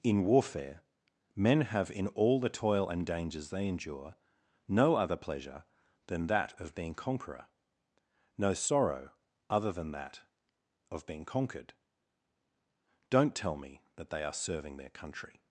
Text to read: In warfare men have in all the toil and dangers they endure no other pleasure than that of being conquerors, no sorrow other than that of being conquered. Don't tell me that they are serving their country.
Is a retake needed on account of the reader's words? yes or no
yes